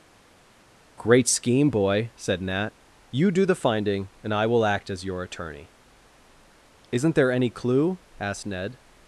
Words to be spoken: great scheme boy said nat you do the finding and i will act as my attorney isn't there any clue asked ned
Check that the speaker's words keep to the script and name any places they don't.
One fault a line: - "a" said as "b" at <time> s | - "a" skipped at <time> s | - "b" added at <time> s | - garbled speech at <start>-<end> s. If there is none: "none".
- "my" said as "your" at 5.0 s